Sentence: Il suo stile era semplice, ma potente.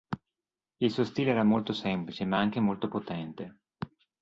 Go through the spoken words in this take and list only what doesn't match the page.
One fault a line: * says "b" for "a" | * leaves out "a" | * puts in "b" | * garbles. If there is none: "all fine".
* puts in "molto"
* puts in "anche molto"